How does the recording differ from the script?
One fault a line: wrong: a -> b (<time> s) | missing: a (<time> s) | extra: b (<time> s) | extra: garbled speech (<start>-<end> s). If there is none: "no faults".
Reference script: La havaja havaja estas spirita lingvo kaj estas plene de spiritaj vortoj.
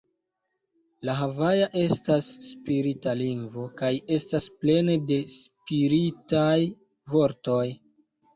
missing: havaja (1.7 s)